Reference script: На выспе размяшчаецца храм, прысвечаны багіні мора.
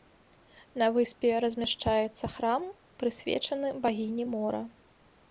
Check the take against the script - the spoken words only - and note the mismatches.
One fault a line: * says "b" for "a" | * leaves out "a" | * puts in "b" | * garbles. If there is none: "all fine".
all fine